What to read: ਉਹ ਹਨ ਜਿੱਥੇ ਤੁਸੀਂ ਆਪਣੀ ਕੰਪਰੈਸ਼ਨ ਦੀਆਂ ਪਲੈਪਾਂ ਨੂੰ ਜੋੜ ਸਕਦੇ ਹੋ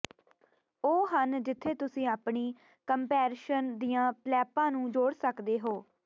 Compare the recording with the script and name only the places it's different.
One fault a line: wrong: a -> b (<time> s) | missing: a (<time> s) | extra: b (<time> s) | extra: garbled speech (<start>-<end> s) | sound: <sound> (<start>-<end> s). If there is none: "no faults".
no faults